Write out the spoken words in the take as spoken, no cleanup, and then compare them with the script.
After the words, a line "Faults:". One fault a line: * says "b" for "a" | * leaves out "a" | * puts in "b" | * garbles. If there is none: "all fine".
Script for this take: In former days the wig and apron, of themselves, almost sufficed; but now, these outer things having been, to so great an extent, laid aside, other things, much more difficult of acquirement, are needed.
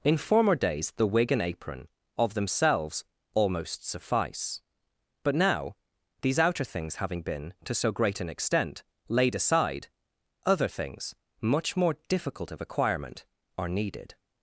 In former days the wig and apron, of themselves, almost suffice; but now, these outer things having been, to so great an extent, laid aside, other things, much more difficult of acquirement, are needed.
Faults:
* says "suffice" for "sufficed"